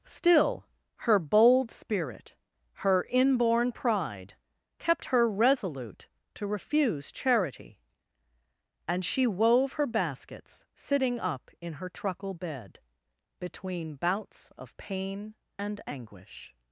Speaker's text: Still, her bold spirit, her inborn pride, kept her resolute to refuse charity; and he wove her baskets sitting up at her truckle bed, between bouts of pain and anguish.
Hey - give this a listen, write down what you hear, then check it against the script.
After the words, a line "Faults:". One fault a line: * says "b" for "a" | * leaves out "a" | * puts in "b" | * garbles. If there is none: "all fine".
Still, her bold spirit, her inborn pride, kept her resolute to refuse charity; and she wove her baskets sitting up in her truckle bed, between bouts of pain and anguish.
Faults:
* says "she" for "he"
* says "in" for "at"